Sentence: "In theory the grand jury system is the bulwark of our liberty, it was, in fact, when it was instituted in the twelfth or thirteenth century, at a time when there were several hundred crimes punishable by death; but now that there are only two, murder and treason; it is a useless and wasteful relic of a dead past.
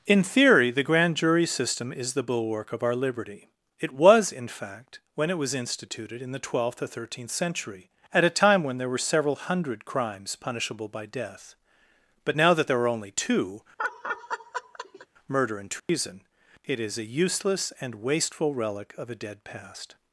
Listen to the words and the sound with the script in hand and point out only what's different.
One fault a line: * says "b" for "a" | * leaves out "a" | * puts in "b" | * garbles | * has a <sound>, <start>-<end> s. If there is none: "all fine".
* has a laugh, 13.8-15.1 s
* has a dropout, 15.8-15.9 s